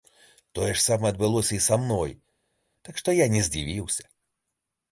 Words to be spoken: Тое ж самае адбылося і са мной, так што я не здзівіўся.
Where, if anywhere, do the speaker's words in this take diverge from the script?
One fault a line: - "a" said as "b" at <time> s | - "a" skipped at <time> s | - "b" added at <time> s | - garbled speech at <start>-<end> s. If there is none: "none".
none